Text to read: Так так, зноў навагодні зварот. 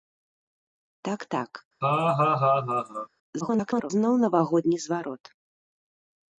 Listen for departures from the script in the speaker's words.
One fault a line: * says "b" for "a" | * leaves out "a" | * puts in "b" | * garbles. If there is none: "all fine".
* garbles